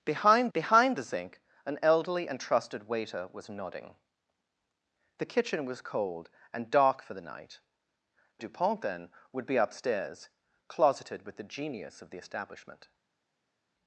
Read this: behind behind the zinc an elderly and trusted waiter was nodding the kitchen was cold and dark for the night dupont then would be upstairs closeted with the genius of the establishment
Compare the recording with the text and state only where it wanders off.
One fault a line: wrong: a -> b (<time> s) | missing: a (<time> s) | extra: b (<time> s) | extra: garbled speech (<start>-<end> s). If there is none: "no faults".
no faults